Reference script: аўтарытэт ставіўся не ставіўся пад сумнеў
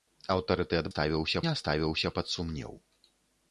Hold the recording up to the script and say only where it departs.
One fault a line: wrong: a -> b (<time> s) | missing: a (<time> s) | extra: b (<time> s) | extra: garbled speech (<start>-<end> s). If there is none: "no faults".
no faults